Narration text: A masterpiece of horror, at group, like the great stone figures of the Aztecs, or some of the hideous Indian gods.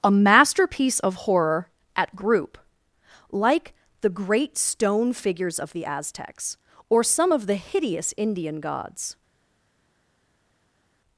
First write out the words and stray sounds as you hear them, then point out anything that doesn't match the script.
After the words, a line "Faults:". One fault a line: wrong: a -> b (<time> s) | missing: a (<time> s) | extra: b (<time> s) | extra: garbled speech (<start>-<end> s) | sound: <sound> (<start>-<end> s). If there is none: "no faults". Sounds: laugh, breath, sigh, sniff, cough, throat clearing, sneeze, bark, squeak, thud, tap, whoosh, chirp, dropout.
A masterpiece of horror, at group, like the great stone figures of the Aztecs, or some of the hideous Indian gods.
Faults:
no faults